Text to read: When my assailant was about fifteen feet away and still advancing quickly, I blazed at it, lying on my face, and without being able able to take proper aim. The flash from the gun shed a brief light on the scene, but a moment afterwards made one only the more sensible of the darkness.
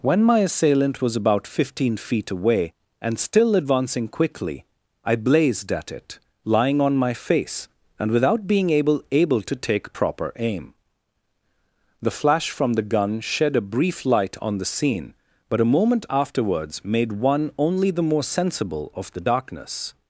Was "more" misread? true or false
false